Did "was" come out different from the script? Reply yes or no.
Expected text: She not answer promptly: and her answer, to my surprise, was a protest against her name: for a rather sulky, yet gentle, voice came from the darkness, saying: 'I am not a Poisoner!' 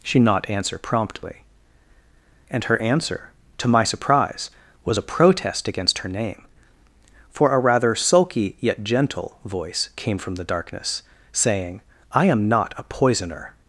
no